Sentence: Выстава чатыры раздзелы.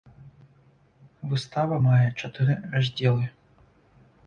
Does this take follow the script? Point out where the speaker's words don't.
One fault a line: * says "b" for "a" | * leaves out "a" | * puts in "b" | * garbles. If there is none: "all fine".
* puts in "мае"